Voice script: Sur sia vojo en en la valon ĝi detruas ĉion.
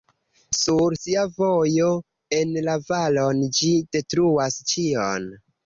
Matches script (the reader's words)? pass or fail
fail